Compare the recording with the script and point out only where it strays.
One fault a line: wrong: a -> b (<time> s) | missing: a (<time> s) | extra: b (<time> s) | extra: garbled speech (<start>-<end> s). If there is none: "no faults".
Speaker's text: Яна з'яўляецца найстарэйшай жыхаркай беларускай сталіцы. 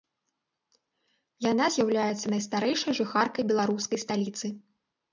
no faults